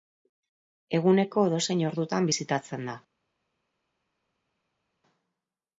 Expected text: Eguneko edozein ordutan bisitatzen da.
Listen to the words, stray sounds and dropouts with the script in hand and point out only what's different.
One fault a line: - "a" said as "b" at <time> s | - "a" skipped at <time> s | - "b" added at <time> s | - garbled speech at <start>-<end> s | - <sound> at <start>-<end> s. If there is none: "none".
none